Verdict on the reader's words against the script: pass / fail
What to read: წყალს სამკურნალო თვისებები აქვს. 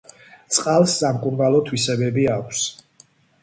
pass